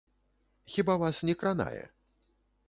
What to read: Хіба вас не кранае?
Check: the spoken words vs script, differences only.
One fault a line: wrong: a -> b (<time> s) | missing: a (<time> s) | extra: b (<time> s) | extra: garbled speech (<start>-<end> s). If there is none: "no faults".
no faults